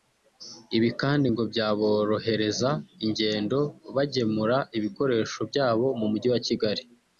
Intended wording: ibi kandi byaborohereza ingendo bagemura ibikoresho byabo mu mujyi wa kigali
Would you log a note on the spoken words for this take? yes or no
yes